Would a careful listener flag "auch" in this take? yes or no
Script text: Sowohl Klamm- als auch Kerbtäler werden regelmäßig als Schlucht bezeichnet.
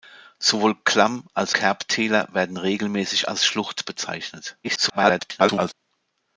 yes